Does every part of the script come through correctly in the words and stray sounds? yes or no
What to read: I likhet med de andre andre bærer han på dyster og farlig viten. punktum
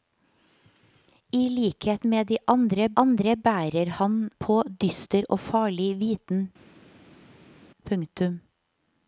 yes